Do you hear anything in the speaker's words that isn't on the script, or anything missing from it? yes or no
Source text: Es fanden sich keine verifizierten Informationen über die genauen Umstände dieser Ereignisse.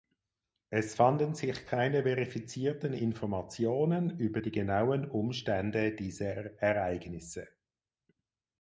no